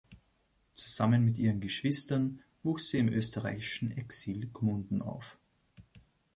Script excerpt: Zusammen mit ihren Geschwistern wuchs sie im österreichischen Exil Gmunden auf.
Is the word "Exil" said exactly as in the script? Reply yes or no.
yes